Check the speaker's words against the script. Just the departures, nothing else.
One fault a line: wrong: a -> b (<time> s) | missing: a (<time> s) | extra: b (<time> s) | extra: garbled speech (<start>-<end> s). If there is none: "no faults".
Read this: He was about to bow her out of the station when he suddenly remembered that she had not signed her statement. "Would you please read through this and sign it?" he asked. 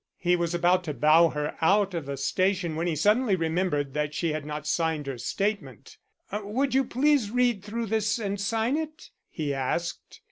no faults